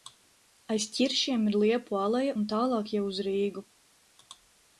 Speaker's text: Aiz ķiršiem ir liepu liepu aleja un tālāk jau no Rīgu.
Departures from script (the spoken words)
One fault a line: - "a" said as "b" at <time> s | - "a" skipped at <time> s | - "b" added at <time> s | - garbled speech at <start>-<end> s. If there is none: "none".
- "liepu" skipped at 2.0 s
- "no" said as "uz" at 3.1 s